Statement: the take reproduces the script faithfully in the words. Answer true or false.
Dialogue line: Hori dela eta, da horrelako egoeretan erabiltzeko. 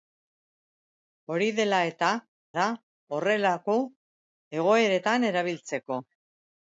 true